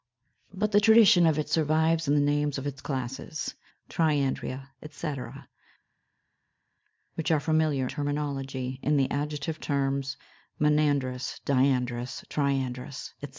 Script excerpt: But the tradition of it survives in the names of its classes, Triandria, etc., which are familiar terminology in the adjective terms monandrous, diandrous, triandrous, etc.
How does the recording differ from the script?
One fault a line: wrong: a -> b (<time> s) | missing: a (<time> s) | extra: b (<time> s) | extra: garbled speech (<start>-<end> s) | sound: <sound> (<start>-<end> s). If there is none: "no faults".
no faults